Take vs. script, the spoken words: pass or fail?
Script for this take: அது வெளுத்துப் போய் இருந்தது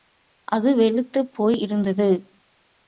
pass